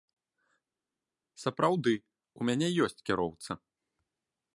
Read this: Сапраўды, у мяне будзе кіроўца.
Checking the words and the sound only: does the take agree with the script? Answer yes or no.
no